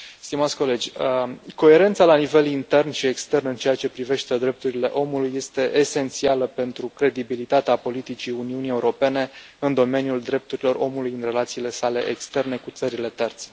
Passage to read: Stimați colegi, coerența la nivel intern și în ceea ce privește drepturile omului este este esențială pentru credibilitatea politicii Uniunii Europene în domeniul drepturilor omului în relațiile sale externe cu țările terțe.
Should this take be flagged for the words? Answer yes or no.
yes